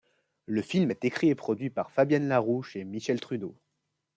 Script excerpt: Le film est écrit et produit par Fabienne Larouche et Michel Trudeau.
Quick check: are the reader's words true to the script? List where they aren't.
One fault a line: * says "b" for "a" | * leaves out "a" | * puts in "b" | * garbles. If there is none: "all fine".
all fine